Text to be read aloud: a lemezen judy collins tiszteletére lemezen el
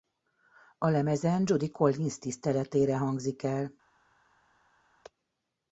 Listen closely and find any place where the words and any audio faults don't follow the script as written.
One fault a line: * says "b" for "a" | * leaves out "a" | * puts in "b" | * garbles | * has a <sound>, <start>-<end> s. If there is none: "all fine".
* says "hangzik" for "lemezen"